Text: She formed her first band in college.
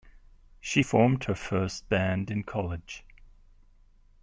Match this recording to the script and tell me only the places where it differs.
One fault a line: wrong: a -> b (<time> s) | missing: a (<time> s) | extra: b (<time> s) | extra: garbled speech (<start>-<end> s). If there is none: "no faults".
no faults